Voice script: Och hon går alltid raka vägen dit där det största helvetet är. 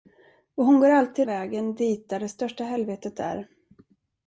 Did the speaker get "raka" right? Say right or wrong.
wrong